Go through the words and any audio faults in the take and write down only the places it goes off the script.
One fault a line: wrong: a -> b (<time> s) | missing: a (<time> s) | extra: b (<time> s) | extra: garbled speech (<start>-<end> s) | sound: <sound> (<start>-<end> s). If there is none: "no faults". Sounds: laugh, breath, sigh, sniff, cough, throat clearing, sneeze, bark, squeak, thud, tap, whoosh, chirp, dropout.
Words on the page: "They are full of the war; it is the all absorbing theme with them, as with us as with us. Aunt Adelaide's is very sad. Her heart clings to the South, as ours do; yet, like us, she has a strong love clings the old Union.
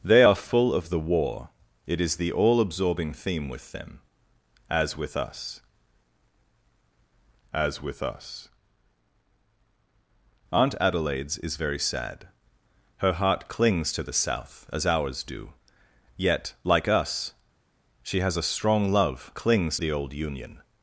no faults